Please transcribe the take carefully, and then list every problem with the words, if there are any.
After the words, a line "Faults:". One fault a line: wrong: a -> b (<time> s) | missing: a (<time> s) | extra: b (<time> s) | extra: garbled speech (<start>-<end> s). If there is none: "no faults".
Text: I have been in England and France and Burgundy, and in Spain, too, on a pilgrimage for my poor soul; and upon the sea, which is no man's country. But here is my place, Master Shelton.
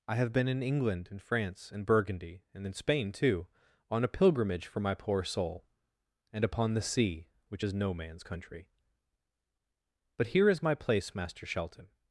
I have been in England and France and Burgundy, and in Spain, too, on a pilgrimage for my poor soul; and upon the sea, which is no man's country. But here is my place, Master Shelton.
Faults:
no faults